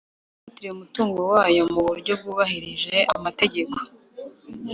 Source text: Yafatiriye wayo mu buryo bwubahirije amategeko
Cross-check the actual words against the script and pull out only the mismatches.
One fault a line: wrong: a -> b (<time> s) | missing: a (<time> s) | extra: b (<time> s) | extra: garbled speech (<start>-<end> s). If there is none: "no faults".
extra: umutungo (0.7 s)